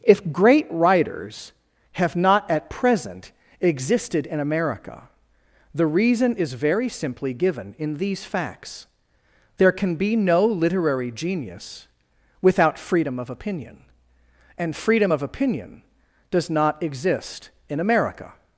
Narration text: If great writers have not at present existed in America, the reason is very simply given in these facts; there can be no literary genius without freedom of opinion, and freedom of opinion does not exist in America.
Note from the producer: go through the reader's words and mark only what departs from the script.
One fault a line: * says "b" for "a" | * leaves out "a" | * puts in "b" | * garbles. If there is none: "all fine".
all fine